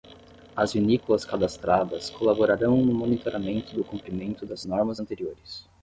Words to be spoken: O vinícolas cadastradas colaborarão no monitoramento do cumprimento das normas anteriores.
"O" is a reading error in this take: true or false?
true